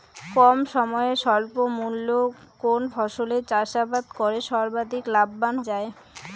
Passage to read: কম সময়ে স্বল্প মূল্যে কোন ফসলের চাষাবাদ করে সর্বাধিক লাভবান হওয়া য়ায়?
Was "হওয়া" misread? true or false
true